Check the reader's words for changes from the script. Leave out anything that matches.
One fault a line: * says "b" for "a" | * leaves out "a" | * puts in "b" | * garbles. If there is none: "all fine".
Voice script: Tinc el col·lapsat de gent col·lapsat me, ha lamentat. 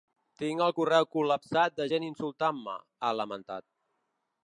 * puts in "correu"
* says "insultant" for "col·lapsat"